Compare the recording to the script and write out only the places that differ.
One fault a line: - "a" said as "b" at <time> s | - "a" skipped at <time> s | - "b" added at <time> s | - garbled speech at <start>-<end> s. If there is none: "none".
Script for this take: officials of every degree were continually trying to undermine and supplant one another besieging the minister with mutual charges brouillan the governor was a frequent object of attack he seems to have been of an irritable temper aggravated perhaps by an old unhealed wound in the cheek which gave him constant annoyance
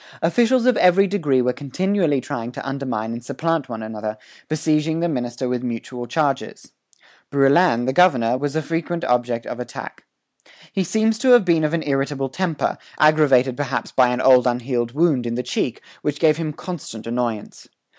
none